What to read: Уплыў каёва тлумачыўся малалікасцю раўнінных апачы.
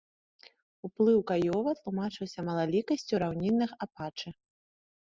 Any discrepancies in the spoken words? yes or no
no